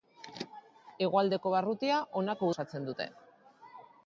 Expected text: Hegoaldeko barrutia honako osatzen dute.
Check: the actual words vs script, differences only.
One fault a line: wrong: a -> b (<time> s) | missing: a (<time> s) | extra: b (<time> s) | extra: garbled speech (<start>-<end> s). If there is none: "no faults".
no faults